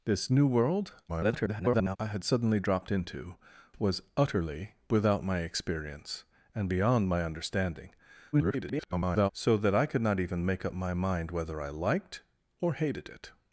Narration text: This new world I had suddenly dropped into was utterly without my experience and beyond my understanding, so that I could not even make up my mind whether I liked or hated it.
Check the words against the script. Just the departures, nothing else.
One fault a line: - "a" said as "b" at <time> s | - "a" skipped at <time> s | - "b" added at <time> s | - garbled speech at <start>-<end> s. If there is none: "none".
- garbled speech at 1.1-2.0 s
- garbled speech at 8.3-9.3 s